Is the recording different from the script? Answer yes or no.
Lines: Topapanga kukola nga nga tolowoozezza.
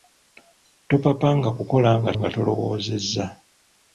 no